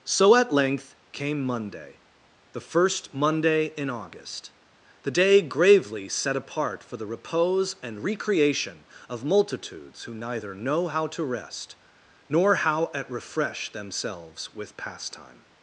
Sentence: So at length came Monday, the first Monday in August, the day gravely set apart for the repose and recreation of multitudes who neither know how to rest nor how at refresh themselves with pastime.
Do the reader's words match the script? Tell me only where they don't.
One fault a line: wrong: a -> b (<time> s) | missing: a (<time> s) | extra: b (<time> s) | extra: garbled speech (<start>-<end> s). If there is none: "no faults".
no faults